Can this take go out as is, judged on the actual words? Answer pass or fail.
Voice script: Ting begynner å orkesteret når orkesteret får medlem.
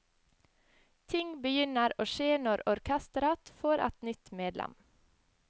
fail